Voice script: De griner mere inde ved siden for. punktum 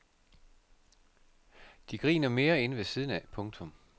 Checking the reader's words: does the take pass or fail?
fail